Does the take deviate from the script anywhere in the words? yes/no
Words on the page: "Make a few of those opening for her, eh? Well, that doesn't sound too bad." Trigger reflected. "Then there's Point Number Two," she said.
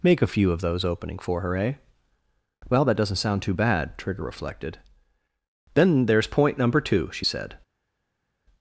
no